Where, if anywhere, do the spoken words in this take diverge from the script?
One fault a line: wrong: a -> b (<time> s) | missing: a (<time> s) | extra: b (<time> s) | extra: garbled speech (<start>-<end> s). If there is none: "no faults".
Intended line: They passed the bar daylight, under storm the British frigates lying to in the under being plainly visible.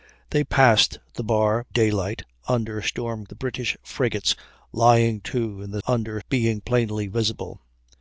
no faults